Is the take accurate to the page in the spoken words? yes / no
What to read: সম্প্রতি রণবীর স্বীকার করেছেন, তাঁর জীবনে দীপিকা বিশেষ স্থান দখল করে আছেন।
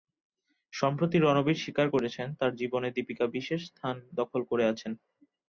yes